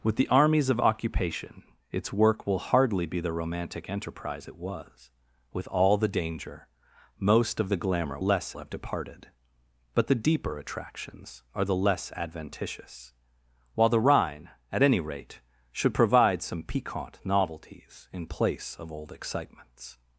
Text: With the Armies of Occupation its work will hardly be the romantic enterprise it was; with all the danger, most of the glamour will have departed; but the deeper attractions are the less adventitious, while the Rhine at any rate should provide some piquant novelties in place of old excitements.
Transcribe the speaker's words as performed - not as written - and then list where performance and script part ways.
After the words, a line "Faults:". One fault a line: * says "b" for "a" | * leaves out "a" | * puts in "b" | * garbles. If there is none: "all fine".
With the Armies of Occupation its work will hardly be the romantic enterprise it was; with all the danger, most of the glamour less have departed; but the deeper attractions are the less adventitious, while the Rhine at any rate should provide some piquant novelties in place of old excitements.
Faults:
* says "less" for "will"